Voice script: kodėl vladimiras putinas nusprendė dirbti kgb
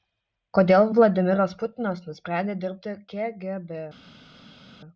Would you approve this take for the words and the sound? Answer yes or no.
yes